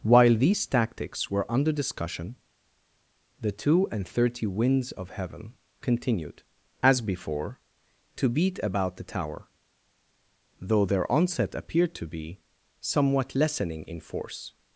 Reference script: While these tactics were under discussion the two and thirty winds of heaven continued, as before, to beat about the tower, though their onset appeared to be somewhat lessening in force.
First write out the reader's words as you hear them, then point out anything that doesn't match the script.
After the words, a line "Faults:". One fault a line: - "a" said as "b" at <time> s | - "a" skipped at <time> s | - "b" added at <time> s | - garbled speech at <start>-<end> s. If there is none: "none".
While these tactics were under discussion the two and thirty winds of heaven continued, as before, to beat about the tower, though their onset appeared to be somewhat lessening in force.
Faults:
none